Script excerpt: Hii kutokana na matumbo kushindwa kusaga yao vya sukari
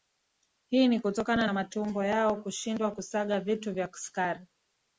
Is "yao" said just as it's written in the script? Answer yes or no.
no